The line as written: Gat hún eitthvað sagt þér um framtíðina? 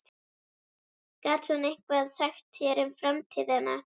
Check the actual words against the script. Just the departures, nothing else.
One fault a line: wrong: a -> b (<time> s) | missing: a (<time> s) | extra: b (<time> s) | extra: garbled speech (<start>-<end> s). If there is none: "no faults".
no faults